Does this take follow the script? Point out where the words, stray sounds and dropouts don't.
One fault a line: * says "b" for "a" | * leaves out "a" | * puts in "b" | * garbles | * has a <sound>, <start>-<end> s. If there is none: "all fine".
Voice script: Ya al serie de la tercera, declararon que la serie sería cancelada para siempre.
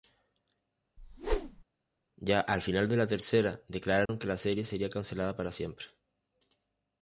* has a whoosh, 1.0-1.6 s
* says "final" for "serie"
* has a dropout, 4.1-4.1 s